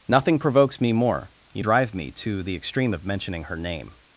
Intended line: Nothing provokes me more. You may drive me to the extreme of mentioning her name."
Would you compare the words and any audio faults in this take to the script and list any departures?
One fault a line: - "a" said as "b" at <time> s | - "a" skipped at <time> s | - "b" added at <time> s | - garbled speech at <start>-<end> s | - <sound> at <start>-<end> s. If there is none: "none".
- "may" skipped at 1.6 s